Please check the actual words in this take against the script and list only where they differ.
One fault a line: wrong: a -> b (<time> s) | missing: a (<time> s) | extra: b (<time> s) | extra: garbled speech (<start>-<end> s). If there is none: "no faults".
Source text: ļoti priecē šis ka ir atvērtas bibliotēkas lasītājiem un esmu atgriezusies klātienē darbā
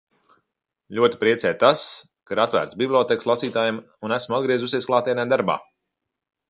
wrong: šis -> tas (1.6 s)